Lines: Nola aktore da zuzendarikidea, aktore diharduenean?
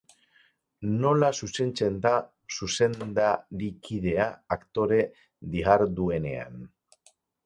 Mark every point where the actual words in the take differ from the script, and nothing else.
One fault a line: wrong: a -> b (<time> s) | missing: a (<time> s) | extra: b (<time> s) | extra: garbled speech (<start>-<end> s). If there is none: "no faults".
wrong: aktore -> zuzentzen (1.5 s)